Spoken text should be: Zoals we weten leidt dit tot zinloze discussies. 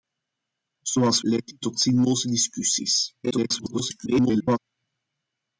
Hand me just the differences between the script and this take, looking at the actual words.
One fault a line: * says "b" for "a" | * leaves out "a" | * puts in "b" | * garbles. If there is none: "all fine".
* leaves out "we weten"
* garbles